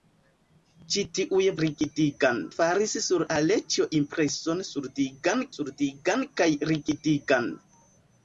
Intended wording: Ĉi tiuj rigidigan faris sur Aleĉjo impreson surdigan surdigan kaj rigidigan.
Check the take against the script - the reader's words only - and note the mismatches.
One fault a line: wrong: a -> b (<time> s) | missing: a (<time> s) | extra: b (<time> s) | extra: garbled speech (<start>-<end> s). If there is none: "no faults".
no faults